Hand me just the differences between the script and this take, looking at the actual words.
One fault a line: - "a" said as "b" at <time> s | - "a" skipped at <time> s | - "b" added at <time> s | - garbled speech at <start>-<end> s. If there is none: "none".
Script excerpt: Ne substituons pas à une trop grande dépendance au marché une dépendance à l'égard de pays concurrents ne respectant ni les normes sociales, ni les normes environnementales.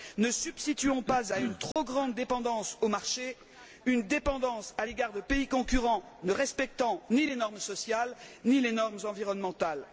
none